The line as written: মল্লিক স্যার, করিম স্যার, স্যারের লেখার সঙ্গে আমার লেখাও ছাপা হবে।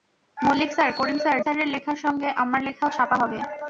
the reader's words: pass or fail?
pass